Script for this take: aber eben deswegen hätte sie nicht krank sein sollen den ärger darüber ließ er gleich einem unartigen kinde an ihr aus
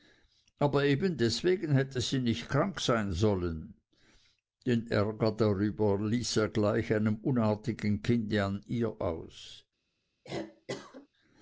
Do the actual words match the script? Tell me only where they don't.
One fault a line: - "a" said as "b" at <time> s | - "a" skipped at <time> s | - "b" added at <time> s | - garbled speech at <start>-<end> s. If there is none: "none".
none